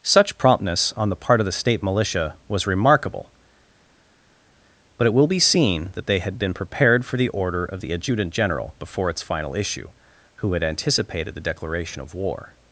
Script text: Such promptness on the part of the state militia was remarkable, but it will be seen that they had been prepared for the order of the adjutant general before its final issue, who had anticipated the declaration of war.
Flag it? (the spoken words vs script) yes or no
no